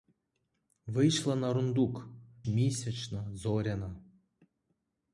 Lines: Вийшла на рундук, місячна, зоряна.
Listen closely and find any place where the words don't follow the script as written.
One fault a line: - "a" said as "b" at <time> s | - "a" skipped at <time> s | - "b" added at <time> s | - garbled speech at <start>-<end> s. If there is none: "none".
none